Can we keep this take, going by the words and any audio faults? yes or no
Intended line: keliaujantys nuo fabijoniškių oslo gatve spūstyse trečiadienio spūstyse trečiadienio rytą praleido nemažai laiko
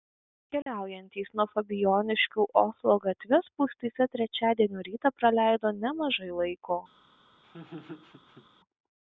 no